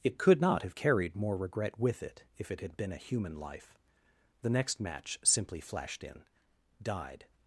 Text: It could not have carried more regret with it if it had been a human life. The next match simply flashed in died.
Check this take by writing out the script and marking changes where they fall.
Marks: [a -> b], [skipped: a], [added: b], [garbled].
It could not have carried more regret with it if it had been a human life. The next match simply flashed in died.